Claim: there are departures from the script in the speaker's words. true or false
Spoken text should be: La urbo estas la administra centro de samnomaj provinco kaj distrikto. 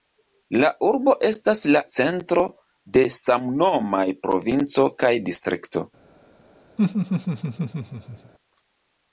true